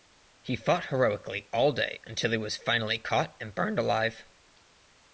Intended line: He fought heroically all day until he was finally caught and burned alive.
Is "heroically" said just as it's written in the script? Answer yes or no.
yes